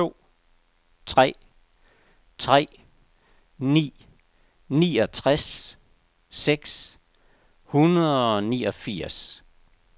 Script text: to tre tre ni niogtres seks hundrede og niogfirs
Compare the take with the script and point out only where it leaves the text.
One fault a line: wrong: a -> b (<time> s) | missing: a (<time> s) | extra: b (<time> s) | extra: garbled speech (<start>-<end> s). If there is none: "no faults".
no faults